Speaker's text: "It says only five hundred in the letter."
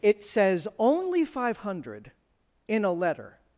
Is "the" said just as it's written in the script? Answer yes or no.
no